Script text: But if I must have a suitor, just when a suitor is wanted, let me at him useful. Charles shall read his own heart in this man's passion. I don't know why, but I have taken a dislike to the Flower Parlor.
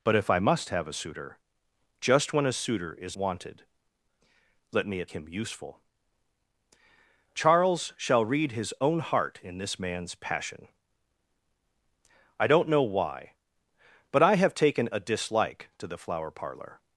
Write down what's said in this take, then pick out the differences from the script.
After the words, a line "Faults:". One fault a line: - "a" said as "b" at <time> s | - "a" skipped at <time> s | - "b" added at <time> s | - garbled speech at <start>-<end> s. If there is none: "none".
But if I must have a suitor, just when a suitor is wanted, let me at him useful. Charles shall read his own heart in this man's passion. I don't know why, but I have taken a dislike to the Flower Parlor.
Faults:
none